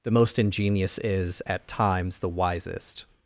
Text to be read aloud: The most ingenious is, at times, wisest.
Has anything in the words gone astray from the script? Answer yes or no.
yes